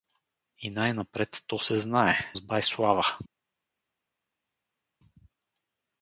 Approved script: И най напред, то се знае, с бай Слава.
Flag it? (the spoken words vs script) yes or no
no